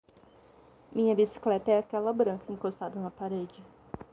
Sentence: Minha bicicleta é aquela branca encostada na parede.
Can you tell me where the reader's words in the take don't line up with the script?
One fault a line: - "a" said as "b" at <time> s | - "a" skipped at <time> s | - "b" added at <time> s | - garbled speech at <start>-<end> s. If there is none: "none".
none